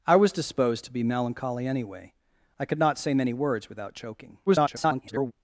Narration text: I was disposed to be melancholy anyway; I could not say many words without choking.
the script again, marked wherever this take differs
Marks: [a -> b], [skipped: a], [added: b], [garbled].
I was disposed to be melancholy anyway; I could not say many words without choking. [garbled]